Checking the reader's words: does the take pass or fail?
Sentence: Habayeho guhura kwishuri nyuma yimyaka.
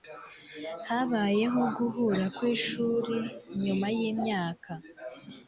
pass